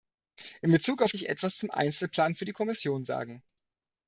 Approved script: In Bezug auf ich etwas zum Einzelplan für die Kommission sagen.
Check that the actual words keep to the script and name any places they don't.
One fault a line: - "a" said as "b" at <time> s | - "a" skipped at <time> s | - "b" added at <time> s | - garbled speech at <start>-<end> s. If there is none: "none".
none